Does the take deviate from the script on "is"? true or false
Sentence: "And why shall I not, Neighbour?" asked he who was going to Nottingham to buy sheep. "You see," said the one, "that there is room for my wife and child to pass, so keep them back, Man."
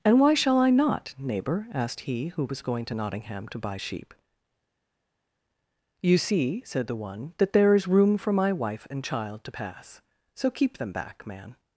false